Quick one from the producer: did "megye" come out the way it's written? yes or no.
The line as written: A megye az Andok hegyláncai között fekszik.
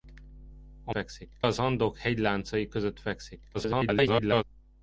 no